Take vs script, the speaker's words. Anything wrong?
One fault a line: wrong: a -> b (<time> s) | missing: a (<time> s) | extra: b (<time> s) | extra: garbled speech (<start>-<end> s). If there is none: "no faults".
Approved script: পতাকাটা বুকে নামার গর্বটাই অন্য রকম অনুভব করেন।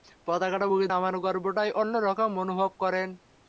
no faults